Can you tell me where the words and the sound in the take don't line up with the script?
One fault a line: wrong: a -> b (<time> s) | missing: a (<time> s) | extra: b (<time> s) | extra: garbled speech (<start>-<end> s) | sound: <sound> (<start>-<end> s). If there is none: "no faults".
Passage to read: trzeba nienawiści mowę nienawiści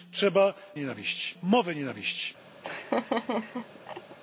sound: laugh (2.6-4.2 s)